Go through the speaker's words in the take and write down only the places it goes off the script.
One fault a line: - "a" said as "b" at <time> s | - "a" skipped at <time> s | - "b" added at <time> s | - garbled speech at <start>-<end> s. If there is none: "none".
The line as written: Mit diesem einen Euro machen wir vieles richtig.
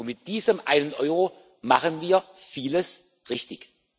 none